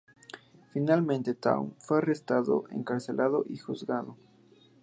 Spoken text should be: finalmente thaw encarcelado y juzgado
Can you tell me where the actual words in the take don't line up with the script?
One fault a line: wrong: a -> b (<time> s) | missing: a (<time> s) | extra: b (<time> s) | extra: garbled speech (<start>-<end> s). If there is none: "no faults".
extra: fue arrestado (1.8 s)